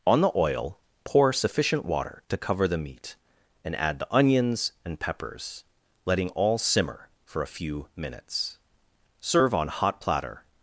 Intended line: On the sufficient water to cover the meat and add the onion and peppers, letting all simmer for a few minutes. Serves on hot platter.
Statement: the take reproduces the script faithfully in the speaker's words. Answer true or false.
false